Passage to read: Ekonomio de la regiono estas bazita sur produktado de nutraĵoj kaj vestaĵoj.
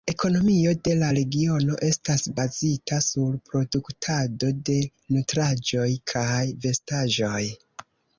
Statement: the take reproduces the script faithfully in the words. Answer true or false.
true